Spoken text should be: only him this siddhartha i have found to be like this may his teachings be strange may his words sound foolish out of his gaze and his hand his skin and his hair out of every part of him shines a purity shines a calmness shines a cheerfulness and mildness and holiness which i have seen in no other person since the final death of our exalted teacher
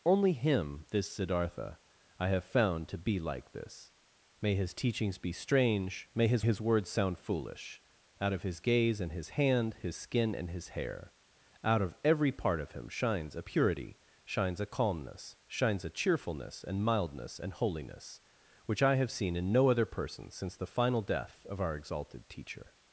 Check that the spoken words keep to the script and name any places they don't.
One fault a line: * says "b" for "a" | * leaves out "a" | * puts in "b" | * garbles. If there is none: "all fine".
* puts in "his"